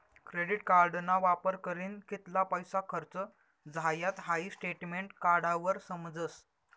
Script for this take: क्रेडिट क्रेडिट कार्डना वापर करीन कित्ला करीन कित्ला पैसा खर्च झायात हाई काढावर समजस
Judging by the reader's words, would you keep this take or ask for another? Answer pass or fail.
fail